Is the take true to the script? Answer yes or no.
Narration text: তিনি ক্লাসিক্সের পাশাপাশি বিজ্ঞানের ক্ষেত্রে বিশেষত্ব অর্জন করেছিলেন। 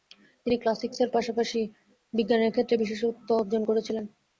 yes